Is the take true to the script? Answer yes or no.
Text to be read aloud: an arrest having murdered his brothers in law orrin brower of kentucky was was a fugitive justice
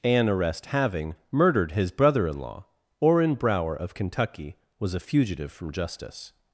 no